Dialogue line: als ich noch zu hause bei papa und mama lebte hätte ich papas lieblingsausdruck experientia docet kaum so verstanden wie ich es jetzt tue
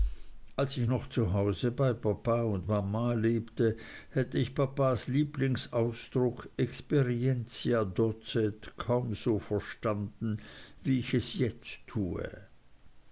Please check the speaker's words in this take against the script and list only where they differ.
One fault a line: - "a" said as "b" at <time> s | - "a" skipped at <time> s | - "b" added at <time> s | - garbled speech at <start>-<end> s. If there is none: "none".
none